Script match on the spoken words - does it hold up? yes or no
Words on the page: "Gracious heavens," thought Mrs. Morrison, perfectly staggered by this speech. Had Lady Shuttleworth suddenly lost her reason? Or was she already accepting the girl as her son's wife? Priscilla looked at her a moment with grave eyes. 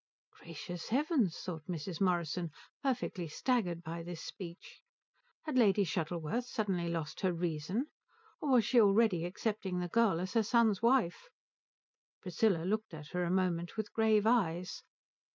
yes